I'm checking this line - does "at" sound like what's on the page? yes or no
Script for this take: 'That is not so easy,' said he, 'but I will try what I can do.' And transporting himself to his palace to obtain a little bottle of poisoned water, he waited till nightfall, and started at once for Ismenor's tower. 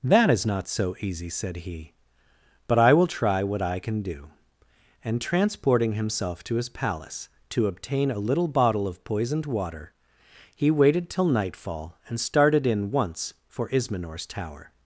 no